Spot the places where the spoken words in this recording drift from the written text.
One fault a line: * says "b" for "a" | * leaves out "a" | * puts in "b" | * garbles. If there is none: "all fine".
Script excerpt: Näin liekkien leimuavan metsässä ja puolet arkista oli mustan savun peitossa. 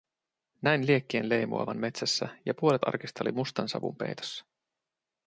all fine